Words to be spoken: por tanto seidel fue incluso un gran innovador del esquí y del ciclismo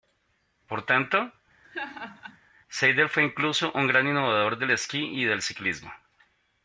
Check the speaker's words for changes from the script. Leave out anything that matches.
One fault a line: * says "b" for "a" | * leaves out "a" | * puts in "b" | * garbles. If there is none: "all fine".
all fine